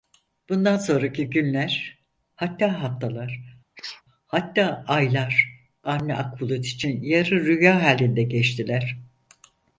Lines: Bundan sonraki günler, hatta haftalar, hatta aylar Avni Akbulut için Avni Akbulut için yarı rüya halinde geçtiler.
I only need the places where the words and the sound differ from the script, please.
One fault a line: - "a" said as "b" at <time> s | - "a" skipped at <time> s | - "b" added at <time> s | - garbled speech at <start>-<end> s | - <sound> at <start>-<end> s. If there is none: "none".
- sneeze at 3.8-4.0 s
- "Avni Akbulut için" skipped at 7.0 s